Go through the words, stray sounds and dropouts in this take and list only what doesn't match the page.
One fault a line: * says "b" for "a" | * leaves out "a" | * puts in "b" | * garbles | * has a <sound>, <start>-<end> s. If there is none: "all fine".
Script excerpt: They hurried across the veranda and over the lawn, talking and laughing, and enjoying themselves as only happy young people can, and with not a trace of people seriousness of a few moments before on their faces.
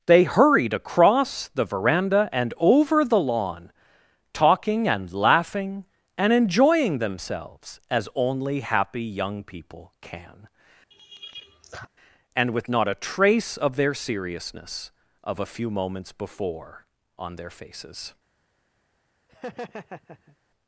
* has a laugh, 10.9-11.9 s
* says "their" for "people"
* has a laugh, 19.3-20.4 s